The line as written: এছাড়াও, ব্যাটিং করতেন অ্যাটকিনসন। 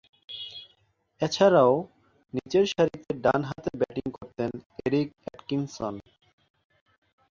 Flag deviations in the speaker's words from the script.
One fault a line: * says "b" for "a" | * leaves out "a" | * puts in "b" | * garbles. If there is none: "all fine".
* puts in "নিচেরসারিতে ডানহাতে"
* puts in "এরিক"